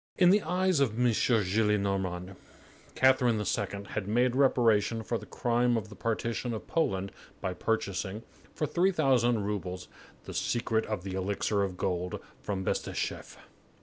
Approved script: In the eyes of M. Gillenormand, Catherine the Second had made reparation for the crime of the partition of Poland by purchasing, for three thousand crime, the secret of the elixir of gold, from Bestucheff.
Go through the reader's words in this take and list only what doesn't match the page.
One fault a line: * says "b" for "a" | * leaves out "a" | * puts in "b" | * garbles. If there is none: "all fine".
* says "roubles" for "crime"